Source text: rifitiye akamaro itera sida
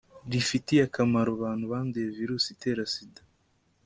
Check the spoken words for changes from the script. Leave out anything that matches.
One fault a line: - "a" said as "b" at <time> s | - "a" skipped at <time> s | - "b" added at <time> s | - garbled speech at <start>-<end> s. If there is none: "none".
- "abantu banduye virusi" added at 1.4 s